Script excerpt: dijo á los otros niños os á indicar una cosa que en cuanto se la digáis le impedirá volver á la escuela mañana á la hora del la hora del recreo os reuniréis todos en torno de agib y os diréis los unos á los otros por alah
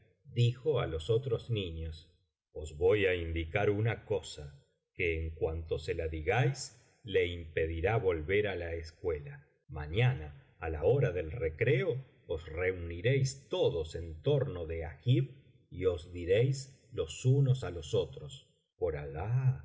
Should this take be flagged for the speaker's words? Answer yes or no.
yes